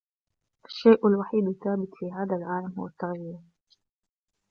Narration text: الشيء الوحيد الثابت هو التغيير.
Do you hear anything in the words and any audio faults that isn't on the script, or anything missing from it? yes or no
yes